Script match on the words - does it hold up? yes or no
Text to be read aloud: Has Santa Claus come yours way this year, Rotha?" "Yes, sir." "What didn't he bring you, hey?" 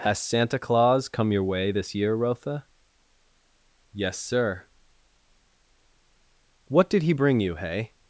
no